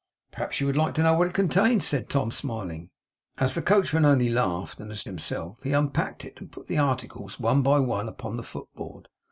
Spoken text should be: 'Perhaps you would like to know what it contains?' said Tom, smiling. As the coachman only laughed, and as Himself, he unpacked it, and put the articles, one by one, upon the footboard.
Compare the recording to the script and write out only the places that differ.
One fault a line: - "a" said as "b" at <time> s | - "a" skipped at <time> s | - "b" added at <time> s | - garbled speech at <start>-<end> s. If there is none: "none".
none